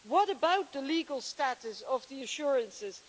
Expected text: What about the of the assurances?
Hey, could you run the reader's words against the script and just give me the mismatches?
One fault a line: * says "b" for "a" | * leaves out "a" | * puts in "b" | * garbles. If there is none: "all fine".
* puts in "legal status"